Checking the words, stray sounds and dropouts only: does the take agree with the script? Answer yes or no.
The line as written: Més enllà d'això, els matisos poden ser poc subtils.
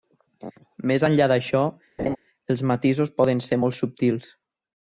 no